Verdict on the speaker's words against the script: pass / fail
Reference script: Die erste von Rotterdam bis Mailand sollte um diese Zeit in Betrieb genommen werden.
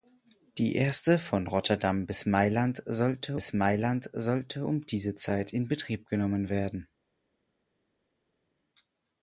fail